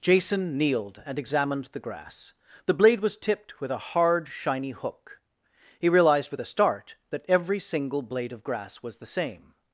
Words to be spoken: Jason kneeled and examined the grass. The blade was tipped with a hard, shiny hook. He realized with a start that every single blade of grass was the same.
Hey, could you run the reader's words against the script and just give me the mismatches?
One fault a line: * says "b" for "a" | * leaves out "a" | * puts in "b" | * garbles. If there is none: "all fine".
all fine